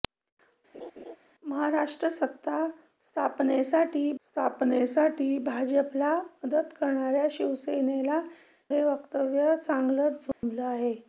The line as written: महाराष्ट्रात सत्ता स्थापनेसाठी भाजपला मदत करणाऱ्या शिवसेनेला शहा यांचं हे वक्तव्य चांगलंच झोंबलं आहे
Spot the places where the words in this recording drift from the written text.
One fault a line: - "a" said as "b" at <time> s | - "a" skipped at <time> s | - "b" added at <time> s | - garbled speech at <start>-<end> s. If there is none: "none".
- "स्थापनेसाठी" added at 4.2 s
- "शहा यांचं" skipped at 8.2 s